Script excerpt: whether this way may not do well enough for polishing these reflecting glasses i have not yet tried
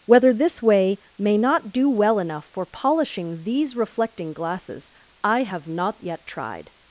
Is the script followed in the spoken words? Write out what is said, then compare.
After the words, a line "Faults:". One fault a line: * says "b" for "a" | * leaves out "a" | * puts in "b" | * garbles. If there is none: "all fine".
whether this way may not do well enough for polishing these reflecting glasses i have not yet tried
Faults:
all fine